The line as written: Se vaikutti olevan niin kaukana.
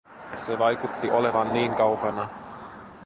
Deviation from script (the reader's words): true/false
false